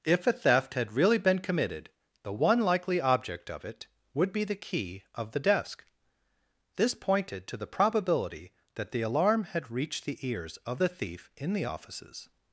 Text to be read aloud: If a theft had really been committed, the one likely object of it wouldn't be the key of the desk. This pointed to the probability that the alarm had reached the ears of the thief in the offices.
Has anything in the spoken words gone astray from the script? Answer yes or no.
yes